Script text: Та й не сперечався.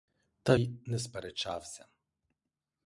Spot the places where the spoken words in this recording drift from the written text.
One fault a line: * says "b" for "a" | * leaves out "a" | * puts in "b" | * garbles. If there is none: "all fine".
all fine